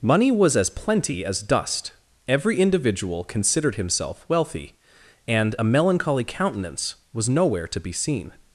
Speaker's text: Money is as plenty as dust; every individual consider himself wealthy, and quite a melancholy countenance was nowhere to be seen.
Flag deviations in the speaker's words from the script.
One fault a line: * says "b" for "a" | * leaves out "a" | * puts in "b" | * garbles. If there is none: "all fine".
* says "was" for "is"
* says "considered" for "consider"
* leaves out "quite"